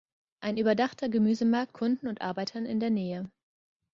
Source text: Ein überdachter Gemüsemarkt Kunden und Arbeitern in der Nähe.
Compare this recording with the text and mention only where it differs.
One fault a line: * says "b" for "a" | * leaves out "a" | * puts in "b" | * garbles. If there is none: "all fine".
all fine